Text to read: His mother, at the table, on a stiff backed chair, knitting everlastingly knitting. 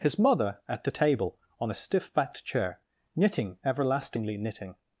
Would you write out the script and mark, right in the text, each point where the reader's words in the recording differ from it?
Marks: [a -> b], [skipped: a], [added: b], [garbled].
His mother, at the table, on a stiff backed chair, knitting everlastingly knitting.